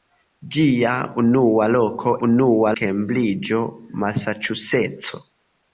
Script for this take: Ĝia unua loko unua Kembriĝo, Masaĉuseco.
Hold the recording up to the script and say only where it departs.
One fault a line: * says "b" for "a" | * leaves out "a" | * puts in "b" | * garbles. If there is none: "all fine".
all fine